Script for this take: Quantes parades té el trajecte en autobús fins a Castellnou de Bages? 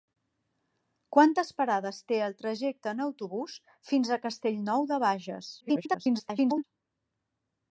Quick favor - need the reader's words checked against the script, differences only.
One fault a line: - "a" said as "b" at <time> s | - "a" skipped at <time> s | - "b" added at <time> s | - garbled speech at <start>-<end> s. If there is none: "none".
- garbled speech at 5.6-6.6 s